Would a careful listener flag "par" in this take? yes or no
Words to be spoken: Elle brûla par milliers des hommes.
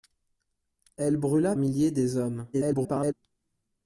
yes